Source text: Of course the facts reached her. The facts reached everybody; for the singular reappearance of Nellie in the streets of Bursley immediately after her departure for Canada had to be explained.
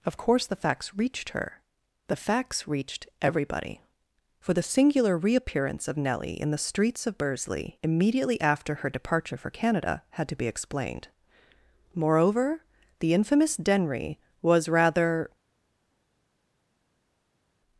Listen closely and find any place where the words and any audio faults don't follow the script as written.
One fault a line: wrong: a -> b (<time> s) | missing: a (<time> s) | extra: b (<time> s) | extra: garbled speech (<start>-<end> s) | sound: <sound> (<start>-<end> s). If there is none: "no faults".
extra: Moreover the infamous Denry was rather (11.9 s)